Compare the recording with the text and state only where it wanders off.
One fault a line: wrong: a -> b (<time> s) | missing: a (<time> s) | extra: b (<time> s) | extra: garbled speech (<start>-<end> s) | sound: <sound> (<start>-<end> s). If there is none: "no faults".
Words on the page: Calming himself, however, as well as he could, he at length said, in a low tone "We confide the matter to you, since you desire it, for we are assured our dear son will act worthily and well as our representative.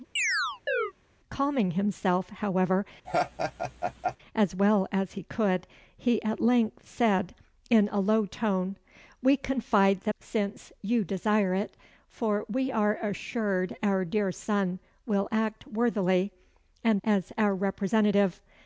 sound: chirp (0.2-0.9 s)
sound: laugh (3.0-4.2 s)
missing: matter to you (10.1 s)
missing: well (17.0 s)